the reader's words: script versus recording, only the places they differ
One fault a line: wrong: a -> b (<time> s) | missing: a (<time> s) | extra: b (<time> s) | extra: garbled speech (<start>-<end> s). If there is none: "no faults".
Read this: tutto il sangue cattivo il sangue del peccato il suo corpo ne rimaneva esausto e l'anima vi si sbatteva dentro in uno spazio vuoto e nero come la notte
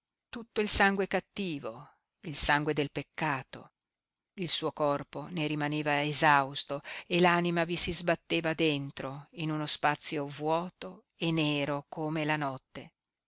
no faults